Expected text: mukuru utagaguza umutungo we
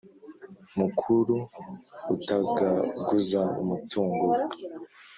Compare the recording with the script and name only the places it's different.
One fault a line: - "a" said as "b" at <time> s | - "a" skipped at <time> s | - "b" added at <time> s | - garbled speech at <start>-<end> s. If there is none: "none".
none